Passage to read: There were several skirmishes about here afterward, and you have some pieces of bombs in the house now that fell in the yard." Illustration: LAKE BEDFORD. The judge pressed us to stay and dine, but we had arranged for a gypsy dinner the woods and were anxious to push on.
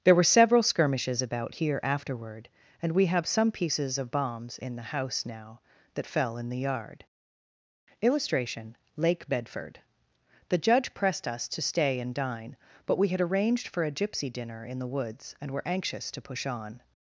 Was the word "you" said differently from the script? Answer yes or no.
yes